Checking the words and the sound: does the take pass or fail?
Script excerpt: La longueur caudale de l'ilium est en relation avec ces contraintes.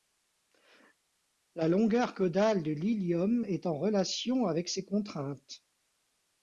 pass